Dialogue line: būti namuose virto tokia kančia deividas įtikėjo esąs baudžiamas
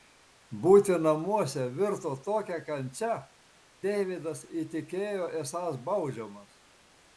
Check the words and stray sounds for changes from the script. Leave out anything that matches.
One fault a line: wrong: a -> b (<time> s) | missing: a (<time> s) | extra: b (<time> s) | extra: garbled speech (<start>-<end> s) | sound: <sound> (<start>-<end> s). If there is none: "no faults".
no faults